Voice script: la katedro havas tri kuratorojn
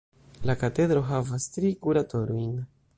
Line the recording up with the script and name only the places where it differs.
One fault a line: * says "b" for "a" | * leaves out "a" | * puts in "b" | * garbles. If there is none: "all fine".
all fine